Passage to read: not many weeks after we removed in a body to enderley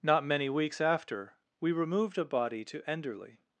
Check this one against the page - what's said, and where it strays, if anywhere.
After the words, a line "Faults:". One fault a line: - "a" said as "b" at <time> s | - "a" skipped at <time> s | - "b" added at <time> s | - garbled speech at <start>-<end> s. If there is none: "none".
not many weeks after we removed a body to enderley
Faults:
- "in" skipped at 2.2 s